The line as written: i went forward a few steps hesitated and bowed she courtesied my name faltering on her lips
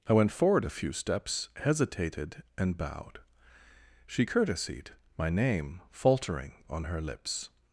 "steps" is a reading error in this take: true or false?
false